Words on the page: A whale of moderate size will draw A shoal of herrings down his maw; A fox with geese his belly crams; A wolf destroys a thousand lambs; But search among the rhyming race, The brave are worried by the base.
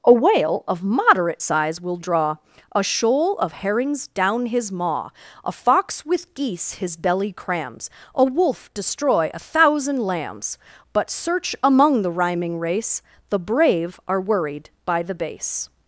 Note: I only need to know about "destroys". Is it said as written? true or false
false